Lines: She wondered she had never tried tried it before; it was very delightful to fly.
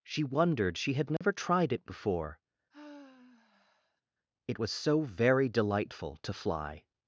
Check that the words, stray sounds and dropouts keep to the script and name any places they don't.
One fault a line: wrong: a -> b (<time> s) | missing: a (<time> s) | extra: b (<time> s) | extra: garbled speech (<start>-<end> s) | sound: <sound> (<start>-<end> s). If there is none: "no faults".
sound: dropout (1.2-1.2 s)
missing: tried (1.7 s)
sound: sigh (2.7-4.0 s)
extra: so (4.7 s)